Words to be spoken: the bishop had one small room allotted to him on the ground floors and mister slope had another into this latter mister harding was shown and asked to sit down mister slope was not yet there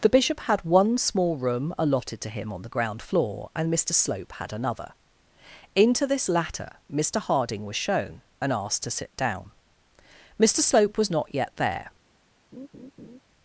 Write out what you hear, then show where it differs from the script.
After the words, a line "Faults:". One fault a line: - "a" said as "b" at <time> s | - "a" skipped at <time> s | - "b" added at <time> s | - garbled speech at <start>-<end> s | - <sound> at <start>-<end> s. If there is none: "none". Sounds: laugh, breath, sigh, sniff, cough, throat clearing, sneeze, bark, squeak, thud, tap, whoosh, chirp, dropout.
the bishop had one small room allotted to him on the ground floor and mister slope had another into this latter mister harding was shown and asked to sit down mister slope was not yet there
Faults:
- "floors" said as "floor" at 3.0 s
- laugh at 12.5-13.2 s